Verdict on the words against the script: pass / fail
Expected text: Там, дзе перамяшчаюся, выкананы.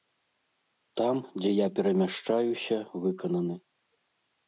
fail